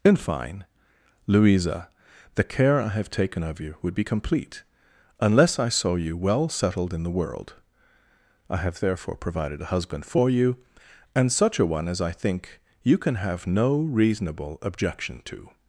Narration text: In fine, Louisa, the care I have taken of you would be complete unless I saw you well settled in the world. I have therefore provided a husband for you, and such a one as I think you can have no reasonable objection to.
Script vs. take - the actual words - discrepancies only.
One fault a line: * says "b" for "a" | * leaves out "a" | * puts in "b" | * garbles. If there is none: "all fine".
all fine